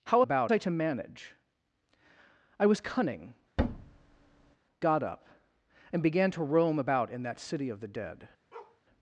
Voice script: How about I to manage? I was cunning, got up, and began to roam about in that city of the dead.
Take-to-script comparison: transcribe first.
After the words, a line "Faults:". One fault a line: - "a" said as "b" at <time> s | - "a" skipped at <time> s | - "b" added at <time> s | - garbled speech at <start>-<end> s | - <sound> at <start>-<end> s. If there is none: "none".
How about I to manage? I was cunning, got up, and began to roam about in that city of the dead.
Faults:
- thud at 3.6-4.6 s
- bark at 8.5-8.8 s